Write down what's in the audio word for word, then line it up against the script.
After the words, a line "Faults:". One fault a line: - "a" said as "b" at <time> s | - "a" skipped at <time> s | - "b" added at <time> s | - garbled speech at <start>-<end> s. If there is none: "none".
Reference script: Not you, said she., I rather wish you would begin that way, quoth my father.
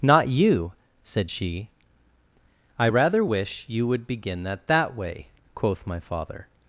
Not you, said she., I rather wish you would begin that that way, quoth my father.
Faults:
- "that" added at 4.7 s